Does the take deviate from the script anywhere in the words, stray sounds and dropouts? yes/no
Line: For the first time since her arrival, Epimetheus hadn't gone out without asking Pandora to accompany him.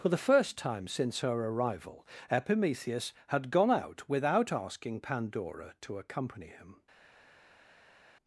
yes